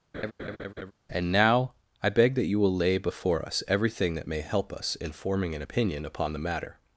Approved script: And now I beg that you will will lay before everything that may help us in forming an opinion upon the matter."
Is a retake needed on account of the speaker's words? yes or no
yes